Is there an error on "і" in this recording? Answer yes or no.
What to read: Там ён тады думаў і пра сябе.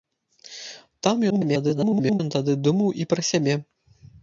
no